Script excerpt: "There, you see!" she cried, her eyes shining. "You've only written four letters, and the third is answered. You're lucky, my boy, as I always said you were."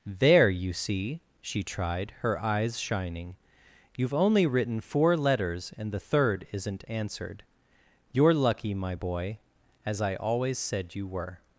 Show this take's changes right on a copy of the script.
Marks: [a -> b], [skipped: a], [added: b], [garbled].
"There, you see!" she [cried, -> tried] her eyes shining. "You've only written four letters, and the third [is -> isn't] answered. You're lucky, my boy, as I always said you were."